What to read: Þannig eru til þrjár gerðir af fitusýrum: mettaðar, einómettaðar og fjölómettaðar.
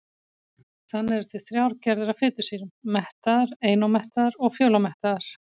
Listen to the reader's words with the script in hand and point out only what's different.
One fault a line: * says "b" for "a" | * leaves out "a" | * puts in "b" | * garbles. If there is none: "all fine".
all fine